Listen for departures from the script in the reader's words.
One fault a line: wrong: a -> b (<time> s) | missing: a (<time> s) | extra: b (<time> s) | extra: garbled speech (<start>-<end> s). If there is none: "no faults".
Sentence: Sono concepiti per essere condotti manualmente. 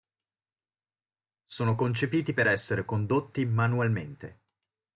no faults